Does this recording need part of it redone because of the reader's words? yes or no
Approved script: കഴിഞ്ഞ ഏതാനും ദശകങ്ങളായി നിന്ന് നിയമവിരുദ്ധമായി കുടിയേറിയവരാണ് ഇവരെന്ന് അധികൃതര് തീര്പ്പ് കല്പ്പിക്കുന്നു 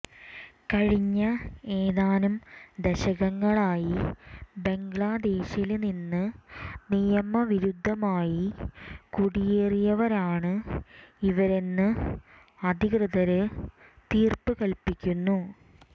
yes